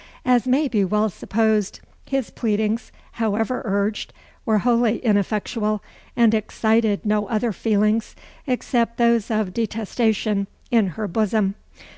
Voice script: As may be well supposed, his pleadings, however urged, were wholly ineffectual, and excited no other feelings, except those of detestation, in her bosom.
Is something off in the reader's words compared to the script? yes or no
no